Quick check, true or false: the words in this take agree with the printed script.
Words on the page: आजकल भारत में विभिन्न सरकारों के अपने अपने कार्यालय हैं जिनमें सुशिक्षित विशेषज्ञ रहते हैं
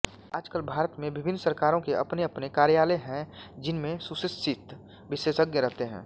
true